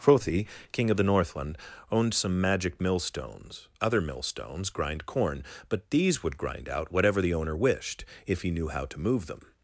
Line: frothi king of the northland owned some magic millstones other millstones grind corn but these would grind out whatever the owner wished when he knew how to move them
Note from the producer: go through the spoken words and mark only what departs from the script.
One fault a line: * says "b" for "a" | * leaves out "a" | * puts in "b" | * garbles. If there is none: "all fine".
* says "if" for "when"